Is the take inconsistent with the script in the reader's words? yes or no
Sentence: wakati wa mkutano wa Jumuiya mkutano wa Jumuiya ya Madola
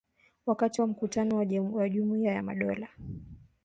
yes